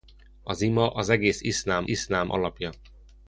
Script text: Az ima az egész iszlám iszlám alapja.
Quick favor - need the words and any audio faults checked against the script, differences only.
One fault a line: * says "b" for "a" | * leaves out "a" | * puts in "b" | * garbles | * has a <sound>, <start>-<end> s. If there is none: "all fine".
all fine